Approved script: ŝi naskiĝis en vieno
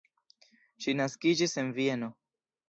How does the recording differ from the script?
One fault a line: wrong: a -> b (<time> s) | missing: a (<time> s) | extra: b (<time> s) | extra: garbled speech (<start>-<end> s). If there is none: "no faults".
no faults